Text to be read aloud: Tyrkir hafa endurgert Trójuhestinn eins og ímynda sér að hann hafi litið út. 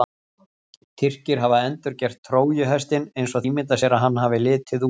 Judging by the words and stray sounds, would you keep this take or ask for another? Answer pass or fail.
pass